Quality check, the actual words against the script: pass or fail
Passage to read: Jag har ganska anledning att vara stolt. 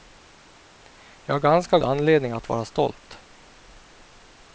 pass